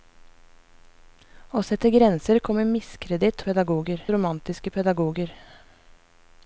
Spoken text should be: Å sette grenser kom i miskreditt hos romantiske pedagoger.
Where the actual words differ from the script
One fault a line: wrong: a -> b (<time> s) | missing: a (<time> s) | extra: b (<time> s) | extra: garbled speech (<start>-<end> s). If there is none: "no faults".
wrong: hos -> pedagoger (3.5 s)